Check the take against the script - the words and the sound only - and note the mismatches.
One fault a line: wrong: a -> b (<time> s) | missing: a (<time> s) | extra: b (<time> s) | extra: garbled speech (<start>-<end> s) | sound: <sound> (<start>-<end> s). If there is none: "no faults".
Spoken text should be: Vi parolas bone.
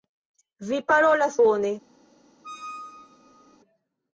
sound: squeak (2.4-3.6 s)